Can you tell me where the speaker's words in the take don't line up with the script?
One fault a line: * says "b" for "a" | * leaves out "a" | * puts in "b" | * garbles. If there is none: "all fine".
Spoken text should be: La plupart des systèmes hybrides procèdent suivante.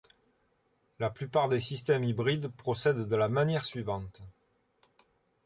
* puts in "de la manière"